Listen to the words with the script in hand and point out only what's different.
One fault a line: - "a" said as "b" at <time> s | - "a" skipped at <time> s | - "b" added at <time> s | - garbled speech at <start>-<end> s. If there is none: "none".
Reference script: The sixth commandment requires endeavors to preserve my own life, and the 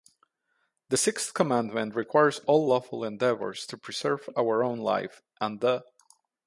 - "all lawful" added at 2.5 s
- "my" said as "our" at 4.4 s